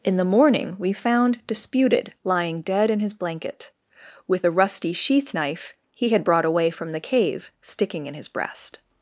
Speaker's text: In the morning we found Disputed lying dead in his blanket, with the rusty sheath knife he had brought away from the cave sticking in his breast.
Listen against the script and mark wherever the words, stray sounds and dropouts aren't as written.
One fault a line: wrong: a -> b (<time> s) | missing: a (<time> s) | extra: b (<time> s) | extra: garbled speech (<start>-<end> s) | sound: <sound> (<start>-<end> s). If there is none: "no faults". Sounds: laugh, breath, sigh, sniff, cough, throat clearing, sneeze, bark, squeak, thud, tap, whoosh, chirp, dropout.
no faults